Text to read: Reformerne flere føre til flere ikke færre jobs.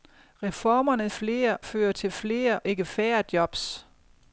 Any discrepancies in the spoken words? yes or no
no